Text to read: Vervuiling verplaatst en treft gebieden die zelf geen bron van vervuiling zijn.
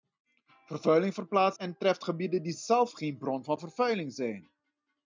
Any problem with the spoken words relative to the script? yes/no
no